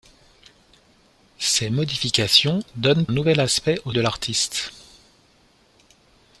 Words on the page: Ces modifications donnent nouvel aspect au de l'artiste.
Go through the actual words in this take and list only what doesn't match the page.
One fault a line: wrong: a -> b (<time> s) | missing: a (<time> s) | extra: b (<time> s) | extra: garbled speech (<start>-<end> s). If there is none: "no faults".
no faults